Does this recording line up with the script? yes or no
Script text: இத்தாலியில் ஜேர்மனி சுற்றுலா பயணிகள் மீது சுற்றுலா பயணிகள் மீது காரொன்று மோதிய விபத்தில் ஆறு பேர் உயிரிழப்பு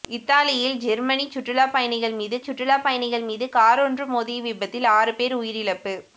yes